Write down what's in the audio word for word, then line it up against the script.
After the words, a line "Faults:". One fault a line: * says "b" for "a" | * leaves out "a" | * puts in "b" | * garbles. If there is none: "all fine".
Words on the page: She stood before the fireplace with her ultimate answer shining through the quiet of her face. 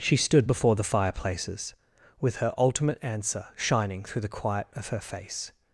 She stood before the fireplaces with her ultimate answer shining through the quiet of her face.
Faults:
* says "fireplaces" for "fireplace"